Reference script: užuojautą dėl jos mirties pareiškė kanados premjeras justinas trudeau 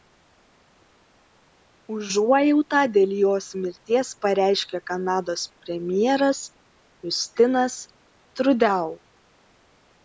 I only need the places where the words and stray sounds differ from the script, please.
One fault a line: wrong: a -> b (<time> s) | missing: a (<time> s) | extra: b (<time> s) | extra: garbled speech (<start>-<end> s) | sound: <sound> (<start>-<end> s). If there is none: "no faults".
no faults